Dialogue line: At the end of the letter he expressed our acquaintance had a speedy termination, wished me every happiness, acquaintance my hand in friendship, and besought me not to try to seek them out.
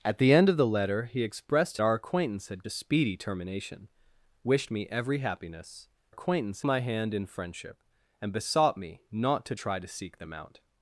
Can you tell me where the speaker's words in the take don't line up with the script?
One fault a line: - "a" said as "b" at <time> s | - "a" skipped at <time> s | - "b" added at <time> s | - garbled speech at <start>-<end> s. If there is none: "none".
none